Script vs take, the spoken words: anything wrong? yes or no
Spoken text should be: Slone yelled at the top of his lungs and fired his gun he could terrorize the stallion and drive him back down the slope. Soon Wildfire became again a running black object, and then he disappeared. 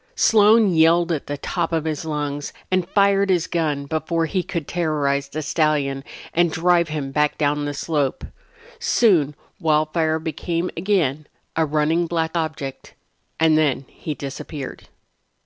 yes